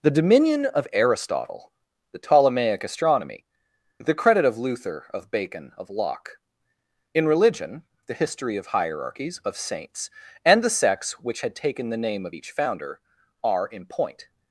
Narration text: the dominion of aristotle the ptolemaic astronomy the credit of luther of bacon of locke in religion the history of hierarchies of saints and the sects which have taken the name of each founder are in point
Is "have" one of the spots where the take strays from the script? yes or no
yes